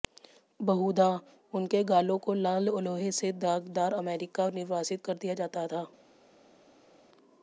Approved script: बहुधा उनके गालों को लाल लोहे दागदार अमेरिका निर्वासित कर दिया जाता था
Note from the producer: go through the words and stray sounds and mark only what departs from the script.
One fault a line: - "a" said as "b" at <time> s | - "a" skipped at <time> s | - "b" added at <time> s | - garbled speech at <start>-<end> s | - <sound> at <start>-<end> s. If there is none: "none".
- "से" added at 3.1 s